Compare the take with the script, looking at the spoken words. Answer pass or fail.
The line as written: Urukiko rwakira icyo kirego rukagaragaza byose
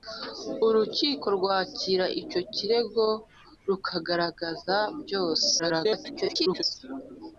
fail